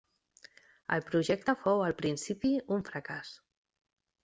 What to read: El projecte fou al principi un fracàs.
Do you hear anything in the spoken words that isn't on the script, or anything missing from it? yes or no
no